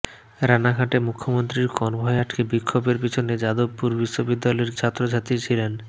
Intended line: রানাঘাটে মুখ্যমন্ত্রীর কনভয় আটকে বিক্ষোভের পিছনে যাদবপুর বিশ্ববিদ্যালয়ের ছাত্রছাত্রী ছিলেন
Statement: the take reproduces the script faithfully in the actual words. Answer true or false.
true